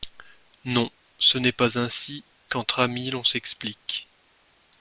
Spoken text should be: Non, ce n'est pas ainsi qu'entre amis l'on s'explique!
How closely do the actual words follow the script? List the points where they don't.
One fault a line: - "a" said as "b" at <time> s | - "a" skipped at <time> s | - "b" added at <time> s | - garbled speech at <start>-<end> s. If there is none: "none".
none